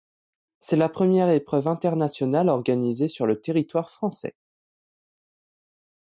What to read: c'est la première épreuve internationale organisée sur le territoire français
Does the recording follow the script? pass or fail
pass